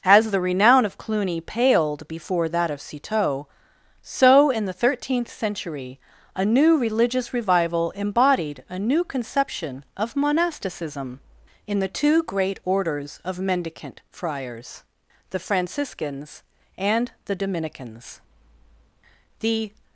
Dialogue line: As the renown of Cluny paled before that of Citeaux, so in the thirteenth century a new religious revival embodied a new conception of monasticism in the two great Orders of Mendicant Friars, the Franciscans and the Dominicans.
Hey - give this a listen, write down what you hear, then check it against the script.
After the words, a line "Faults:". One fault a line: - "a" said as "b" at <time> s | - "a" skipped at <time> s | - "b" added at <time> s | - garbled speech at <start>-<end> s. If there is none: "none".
As the renown of Cluny paled before that of Citeaux, so in the thirteenth century a new religious revival embodied a new conception of monasticism in the two great Orders of Mendicant Friars, the Franciscans and the Dominicans. The
Faults:
- "The" added at 19.4 s